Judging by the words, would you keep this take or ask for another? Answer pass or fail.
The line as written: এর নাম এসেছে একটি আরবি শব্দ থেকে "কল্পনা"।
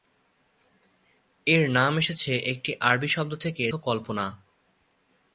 pass